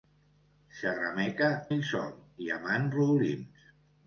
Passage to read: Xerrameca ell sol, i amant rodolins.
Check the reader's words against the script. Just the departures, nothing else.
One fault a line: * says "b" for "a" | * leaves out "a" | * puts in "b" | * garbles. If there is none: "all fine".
all fine